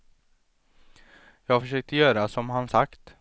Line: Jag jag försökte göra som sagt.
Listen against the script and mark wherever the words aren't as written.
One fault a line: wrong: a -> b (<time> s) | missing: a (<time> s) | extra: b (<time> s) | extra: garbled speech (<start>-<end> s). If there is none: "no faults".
missing: jag (1.6 s)
extra: han (2.5 s)